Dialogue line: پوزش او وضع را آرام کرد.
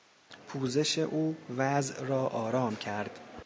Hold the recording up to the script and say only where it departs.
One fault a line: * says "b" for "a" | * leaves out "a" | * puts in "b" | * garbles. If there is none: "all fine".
all fine